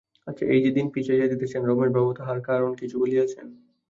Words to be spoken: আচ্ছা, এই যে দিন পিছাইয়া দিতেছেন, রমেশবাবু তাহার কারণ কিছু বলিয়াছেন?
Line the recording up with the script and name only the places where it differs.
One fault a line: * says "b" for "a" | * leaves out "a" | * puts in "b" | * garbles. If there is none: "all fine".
all fine